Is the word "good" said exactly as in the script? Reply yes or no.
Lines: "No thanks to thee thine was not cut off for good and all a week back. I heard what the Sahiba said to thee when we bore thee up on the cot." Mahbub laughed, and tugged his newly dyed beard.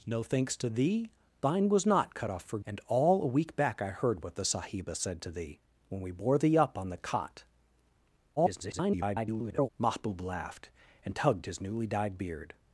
no